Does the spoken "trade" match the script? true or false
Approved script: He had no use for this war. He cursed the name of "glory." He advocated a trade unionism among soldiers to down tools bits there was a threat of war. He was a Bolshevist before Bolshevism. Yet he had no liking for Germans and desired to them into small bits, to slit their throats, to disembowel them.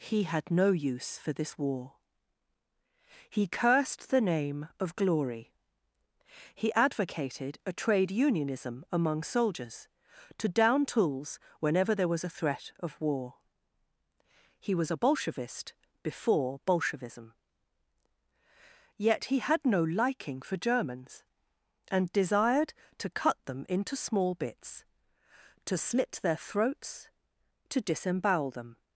true